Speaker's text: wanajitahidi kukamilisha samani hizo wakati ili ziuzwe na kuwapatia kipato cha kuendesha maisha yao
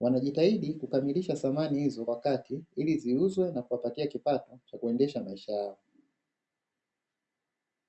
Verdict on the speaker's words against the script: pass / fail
pass